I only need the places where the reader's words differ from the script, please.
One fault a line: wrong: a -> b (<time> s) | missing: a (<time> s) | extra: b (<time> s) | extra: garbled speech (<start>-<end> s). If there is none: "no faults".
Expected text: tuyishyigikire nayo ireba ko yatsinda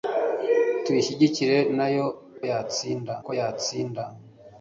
wrong: ireba -> yatsinda (2.5 s)